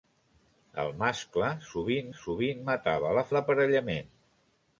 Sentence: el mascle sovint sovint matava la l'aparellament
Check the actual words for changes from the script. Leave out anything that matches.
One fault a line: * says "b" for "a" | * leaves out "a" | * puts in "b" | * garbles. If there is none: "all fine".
all fine